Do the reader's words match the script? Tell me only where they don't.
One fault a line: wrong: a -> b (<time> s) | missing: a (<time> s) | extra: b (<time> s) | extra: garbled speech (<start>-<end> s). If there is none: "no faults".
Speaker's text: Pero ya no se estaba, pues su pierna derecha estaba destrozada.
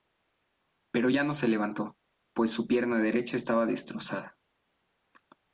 wrong: estaba -> levantó (1.5 s)